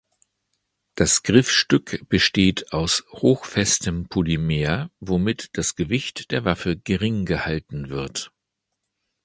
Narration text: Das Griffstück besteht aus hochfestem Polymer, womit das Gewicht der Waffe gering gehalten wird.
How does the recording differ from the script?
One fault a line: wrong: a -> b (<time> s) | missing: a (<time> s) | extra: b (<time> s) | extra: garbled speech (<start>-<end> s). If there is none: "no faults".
no faults